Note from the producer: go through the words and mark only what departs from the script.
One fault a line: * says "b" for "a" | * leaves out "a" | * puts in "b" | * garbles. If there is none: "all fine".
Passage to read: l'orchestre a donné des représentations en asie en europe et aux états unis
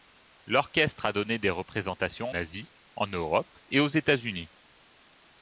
* leaves out "en"